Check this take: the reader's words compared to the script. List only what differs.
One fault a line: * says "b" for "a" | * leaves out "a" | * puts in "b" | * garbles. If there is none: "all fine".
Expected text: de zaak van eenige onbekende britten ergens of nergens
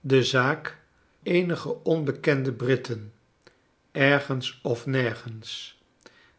* leaves out "van"